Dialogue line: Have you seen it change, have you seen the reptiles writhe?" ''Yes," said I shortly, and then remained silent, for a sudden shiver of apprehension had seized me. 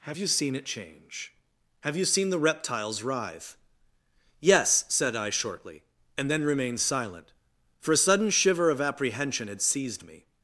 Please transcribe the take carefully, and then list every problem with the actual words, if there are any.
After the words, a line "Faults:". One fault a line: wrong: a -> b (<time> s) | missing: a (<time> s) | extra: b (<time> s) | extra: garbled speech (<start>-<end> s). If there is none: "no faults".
Have you seen it change, have you seen the reptiles writhe?" ''Yes," said I shortly, and then remained silent, for a sudden shiver of apprehension had seized me.
Faults:
no faults